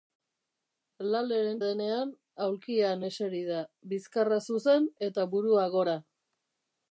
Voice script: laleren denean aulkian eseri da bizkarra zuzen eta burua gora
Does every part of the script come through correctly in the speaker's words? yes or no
yes